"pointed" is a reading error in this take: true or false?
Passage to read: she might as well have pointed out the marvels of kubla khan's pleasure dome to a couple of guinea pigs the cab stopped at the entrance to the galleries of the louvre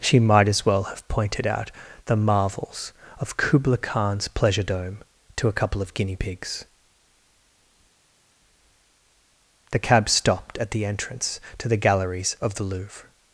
false